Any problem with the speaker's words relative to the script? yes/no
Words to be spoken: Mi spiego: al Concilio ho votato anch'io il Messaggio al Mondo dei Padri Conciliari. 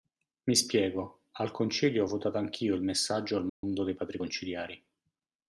no